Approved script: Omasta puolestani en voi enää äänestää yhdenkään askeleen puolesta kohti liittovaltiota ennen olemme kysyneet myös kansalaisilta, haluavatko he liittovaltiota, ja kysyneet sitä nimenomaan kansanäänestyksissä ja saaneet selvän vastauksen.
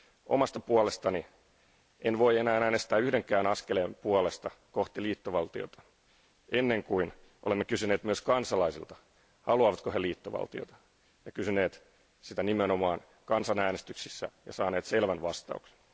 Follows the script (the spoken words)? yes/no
no